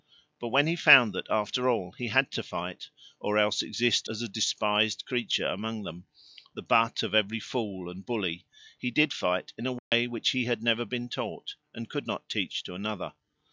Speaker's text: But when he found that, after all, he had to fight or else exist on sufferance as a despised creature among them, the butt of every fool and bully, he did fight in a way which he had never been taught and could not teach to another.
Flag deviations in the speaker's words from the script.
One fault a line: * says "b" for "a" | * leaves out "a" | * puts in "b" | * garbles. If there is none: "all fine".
* leaves out "on sufferance"